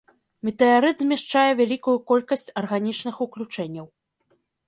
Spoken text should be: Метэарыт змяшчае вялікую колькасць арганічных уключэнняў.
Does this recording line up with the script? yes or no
yes